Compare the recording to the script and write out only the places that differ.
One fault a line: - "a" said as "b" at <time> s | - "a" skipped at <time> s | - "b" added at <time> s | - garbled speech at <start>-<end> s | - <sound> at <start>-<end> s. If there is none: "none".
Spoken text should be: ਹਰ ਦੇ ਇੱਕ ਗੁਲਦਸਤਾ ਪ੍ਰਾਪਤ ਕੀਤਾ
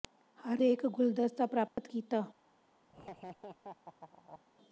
- dropout at 1.7-1.8 s
- laugh at 2.9-4.4 s